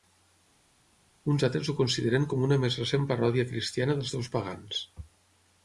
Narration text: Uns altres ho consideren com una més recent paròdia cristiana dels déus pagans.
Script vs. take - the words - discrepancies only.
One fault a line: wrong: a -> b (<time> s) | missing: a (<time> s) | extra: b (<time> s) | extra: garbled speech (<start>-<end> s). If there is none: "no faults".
no faults